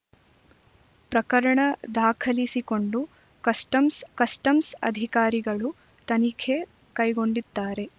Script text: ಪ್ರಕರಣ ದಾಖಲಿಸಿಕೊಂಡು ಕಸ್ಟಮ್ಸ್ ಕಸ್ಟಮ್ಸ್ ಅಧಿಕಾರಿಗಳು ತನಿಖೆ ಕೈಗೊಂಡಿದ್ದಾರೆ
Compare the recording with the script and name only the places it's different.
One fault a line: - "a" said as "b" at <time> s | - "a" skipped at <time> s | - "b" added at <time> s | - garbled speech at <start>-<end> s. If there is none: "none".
none